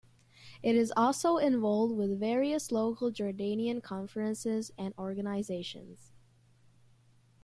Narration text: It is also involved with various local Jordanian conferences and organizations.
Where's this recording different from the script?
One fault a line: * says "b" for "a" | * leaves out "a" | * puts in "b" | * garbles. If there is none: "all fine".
all fine